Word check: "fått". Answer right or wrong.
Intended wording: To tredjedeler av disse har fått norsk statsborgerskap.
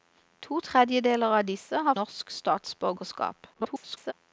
wrong